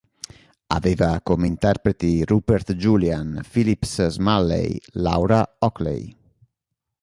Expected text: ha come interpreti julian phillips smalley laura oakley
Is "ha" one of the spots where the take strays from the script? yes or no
yes